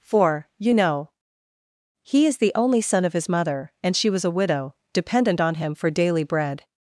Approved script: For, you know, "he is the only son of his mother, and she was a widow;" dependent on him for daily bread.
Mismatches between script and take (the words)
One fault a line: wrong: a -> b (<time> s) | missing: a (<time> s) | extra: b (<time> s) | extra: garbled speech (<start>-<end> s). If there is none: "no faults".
no faults